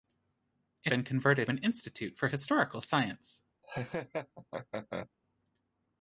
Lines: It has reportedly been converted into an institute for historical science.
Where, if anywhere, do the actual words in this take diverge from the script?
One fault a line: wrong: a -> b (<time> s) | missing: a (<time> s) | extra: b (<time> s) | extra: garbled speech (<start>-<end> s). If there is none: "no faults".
missing: has reportedly (0.9 s)
missing: into (1.5 s)